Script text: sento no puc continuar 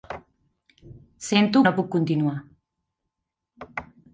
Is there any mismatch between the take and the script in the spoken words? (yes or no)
no